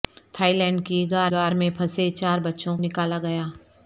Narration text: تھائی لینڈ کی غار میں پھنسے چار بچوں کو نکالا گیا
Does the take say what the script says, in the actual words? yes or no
no